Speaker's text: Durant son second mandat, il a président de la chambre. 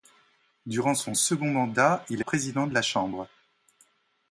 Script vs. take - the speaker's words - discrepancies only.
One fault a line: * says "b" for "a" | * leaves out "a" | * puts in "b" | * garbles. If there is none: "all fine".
all fine